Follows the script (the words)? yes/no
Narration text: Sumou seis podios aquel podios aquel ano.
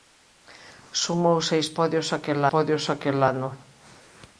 yes